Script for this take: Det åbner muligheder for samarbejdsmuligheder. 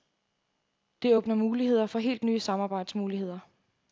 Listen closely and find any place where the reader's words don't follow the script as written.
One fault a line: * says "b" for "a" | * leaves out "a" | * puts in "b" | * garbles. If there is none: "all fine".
* puts in "helt nye"